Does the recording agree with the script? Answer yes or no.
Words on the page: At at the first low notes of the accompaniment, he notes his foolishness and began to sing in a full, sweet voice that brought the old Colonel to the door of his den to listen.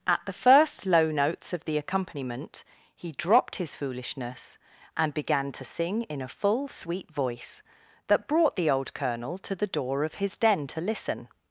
no